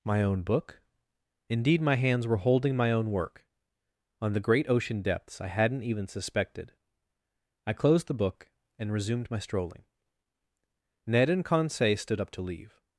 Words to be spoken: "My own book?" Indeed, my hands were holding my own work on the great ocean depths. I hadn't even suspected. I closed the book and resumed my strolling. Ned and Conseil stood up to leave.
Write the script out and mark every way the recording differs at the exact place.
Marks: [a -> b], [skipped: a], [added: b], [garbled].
"My own book?" Indeed, my hands were holding my own work on the great ocean depths. I hadn't even suspected. I closed the book and resumed my strolling. Ned and Conseil stood up to leave.